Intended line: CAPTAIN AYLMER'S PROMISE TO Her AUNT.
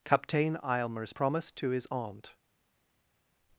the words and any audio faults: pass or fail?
fail